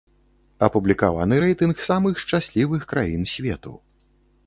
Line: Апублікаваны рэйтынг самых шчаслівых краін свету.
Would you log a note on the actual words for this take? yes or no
no